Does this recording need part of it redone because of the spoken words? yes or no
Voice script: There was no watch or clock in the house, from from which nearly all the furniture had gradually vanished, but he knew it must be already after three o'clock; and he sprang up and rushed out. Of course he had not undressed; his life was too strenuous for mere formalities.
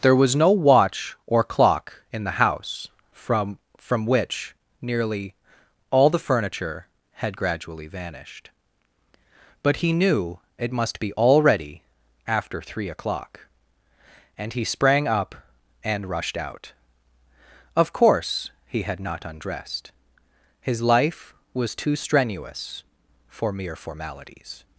no